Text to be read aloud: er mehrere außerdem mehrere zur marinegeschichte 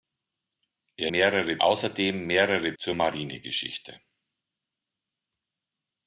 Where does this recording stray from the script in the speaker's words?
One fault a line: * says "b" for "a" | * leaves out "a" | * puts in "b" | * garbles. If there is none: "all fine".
all fine